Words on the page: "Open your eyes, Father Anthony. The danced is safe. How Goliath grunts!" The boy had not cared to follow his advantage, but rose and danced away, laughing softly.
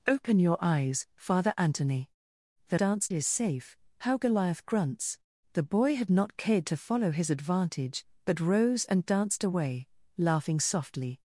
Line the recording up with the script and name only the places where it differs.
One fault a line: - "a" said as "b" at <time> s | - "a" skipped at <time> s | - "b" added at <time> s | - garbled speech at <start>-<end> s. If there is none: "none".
none